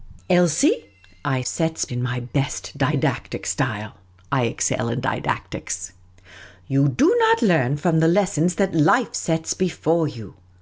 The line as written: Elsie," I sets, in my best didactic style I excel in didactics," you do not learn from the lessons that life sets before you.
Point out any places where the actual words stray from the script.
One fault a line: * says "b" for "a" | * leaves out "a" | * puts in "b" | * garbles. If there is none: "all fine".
all fine